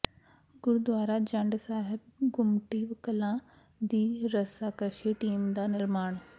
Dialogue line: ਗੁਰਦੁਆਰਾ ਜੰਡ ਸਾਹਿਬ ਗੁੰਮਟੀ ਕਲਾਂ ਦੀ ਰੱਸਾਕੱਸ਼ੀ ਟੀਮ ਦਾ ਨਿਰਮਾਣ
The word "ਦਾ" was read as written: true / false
true